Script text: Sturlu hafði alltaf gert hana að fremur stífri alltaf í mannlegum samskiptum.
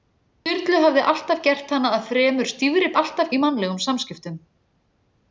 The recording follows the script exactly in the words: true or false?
true